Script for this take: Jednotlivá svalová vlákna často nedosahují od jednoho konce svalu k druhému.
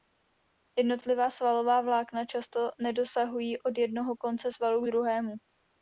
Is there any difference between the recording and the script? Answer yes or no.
no